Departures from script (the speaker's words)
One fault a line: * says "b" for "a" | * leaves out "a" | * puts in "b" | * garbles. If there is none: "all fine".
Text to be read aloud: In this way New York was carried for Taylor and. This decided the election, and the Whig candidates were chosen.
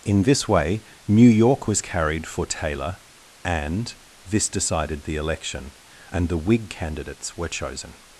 all fine